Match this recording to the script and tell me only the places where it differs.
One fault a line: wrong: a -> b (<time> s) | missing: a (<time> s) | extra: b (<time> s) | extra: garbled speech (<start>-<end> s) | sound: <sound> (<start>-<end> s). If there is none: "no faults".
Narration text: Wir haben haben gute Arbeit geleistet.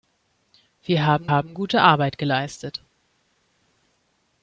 no faults